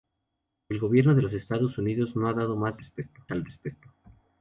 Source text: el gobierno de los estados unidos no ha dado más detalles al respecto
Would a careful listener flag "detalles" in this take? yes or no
yes